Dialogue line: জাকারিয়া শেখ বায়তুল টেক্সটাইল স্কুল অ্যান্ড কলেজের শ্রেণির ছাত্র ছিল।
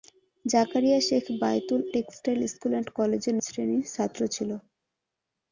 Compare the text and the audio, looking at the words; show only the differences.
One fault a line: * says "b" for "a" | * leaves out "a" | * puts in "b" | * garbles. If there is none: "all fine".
all fine